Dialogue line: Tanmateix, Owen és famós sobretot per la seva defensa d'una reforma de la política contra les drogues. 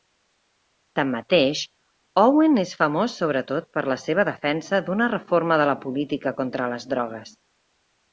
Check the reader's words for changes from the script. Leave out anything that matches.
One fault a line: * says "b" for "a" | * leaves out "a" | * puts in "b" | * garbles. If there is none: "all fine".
all fine